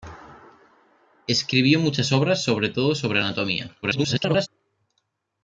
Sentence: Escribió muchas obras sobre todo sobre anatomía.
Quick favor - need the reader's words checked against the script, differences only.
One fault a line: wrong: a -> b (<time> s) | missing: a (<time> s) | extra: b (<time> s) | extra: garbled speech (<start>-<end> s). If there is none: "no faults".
extra: garbled speech (3.8-4.5 s)